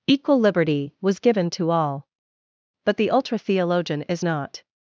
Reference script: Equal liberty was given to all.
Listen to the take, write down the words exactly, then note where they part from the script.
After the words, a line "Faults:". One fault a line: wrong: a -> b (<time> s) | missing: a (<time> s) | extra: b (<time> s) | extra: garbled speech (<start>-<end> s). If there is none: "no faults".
Equal liberty was given to all. But the ultra theologian is not
Faults:
extra: But the ultra theologian is not (2.9 s)